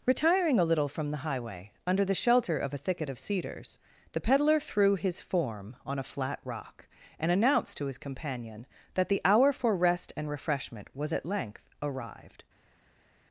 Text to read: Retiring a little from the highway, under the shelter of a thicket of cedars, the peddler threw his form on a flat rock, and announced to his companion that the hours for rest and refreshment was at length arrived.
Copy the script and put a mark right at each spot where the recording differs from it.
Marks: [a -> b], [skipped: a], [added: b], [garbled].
Retiring a little from the highway, under the shelter of a thicket of cedars, the peddler threw his form on a flat rock, and announced to his companion that the [hours -> hour] for rest and refreshment was at length arrived.